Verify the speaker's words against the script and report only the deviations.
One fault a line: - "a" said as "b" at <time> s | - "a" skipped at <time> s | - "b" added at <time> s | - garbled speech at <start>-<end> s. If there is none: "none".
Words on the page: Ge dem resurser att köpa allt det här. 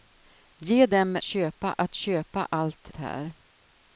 - "resurser" said as "köpa" at 1.2 s
- "det" skipped at 2.9 s